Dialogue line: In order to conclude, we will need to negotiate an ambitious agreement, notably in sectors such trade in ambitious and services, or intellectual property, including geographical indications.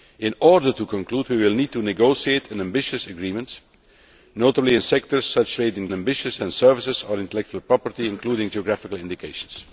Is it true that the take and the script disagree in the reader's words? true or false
false